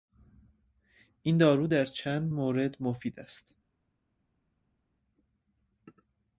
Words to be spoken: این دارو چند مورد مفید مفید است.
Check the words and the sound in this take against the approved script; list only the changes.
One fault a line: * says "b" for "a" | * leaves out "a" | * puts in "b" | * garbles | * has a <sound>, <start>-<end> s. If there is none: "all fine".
* puts in "در"
* leaves out "مفید"